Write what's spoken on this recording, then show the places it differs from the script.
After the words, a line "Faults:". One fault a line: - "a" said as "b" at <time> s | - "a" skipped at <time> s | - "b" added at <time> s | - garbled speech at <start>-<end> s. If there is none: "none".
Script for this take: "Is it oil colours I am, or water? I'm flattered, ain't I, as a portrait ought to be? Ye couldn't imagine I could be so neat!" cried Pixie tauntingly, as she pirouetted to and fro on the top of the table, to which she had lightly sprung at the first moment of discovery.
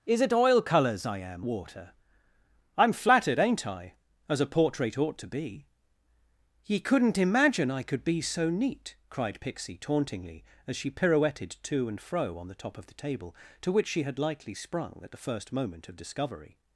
"Is it oil colours I am, water? I'm flattered, ain't I, as a portrait ought to be? Ye couldn't imagine I could be so neat!" cried Pixie tauntingly, as she pirouetted to and fro on the top of the table, to which she had lightly sprung at the first moment of discovery.
Faults:
- "or" skipped at 1.4 s